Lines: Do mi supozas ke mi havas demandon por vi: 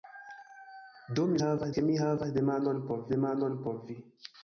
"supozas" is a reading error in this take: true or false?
true